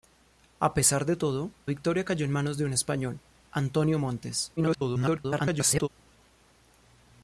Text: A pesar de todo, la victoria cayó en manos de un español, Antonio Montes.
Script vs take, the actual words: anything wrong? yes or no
yes